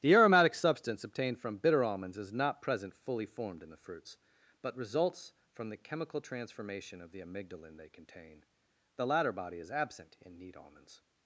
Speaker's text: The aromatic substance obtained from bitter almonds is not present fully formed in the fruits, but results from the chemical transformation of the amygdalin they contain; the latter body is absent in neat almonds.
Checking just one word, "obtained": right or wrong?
right